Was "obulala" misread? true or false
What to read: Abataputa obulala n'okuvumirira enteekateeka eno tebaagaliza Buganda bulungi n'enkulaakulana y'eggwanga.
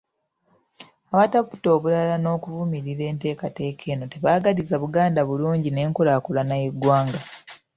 false